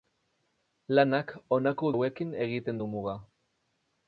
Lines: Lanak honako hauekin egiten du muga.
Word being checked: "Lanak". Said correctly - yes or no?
yes